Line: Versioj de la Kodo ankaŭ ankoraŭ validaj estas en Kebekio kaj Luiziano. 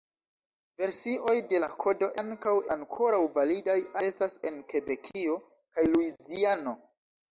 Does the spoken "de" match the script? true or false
true